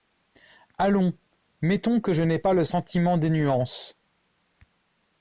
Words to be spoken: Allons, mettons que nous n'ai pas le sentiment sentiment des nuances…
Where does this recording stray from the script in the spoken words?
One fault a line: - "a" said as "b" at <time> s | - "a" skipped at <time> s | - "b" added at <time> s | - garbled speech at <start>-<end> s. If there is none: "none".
- "nous" said as "je" at 2.1 s
- "sentiment" skipped at 3.2 s